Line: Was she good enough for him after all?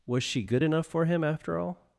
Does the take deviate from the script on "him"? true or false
false